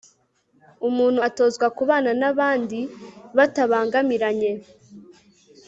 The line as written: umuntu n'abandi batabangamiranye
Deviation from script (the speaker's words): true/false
true